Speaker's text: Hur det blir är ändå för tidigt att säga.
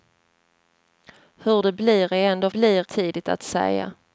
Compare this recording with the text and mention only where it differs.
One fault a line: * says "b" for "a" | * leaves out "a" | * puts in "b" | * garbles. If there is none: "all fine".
* says "blir" for "för"